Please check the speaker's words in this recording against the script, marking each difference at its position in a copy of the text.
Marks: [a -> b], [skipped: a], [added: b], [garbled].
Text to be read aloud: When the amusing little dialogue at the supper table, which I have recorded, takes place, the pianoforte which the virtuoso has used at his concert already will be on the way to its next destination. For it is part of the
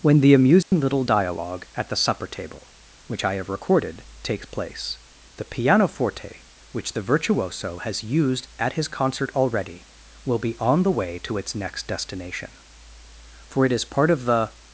When the amusing little dialogue at the supper table, which I have recorded, takes place, the pianoforte which the virtuoso has used at his concert already will be on the way to its next destination. For it is part of the